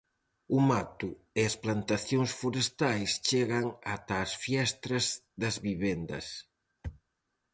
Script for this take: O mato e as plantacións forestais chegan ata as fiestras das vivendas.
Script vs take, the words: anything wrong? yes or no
no